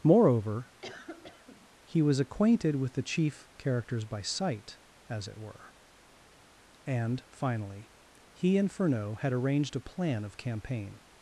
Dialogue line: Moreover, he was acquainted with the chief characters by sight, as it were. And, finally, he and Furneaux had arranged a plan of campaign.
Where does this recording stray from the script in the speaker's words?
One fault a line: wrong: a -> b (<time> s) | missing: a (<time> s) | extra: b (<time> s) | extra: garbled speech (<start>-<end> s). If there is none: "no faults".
no faults